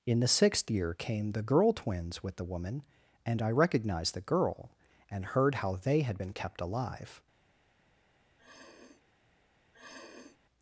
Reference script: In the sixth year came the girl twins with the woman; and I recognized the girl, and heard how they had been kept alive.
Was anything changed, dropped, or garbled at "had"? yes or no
no